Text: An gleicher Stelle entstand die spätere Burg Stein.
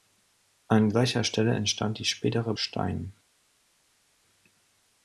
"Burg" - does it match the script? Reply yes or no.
no